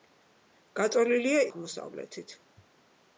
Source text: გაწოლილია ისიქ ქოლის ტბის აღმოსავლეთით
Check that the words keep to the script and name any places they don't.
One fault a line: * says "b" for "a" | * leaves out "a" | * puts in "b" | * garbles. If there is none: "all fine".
* leaves out "ისიქ ქოლის ტბის"